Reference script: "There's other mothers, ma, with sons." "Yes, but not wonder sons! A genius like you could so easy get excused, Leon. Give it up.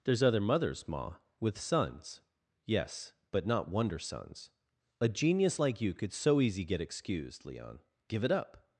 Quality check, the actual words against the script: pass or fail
pass